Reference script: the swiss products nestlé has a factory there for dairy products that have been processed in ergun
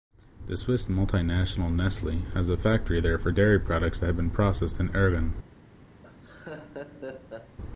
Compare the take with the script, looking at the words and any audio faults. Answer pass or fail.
fail